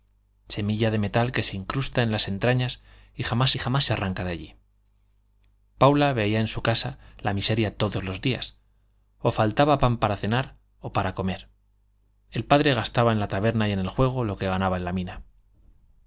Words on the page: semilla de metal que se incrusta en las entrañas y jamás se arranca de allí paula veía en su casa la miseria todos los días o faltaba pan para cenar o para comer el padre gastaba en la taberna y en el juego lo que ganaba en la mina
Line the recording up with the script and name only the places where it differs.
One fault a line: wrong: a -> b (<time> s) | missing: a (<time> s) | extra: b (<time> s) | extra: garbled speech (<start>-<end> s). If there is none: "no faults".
extra: jamás (3.6 s)